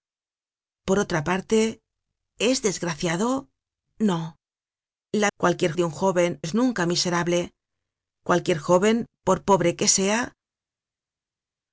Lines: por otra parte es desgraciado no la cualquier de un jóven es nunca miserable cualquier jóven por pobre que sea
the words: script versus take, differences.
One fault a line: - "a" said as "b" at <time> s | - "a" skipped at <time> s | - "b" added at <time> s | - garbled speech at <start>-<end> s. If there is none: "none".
none